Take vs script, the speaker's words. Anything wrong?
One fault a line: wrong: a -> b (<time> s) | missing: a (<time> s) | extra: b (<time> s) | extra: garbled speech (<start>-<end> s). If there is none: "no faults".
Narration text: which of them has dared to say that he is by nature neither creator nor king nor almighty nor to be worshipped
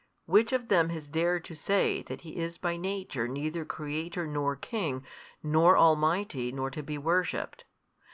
no faults